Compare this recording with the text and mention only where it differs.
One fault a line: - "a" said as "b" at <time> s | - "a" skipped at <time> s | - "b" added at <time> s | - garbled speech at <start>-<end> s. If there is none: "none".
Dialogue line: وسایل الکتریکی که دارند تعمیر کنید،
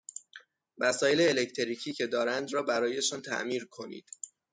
- "را برایشان" added at 2.5 s